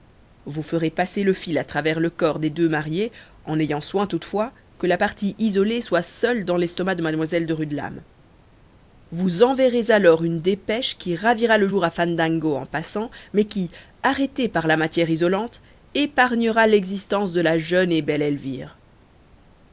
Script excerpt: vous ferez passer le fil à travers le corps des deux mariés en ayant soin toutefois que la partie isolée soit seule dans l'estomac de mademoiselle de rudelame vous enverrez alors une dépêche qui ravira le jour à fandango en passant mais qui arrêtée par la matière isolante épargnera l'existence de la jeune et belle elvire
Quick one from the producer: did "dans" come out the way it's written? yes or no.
yes